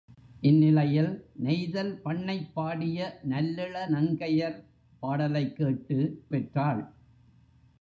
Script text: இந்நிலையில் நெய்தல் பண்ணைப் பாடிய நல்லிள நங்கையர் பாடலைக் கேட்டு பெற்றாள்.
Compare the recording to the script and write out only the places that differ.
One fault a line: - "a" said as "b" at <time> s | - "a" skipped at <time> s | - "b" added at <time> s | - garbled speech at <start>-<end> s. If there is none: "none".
none